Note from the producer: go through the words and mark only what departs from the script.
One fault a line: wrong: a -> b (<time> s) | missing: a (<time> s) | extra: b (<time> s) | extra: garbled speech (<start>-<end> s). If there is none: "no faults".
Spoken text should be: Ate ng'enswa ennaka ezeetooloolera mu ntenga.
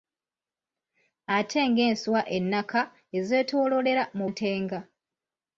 no faults